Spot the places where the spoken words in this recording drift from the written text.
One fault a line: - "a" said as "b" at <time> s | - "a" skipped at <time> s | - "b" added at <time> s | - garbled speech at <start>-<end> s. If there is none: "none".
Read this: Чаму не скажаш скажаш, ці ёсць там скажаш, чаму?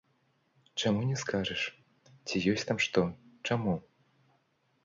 - "скажаш" skipped at 1.6 s
- "скажаш" said as "што" at 2.9 s